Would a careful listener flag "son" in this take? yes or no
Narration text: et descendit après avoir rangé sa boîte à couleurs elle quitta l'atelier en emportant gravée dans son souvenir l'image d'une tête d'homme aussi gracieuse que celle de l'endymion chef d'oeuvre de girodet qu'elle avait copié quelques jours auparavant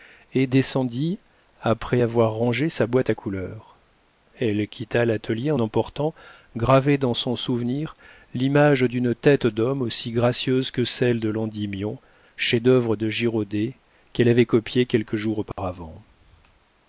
no